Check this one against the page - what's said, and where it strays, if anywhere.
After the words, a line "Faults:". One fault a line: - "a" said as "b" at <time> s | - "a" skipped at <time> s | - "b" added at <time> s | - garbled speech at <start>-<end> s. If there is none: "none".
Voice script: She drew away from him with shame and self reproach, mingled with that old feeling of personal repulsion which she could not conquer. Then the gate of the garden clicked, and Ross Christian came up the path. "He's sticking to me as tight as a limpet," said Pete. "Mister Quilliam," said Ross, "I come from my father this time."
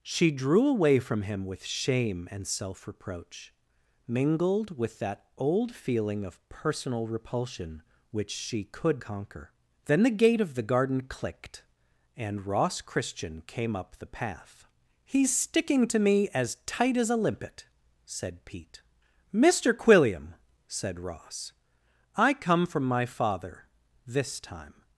She drew away from him with shame and self reproach, mingled with that old feeling of personal repulsion which she could conquer. Then the gate of the garden clicked, and Ross Christian came up the path. "He's sticking to me as tight as a limpet," said Pete. "Mister Quilliam," said Ross, "I come from my father this time."
Faults:
- "not" skipped at 9.0 s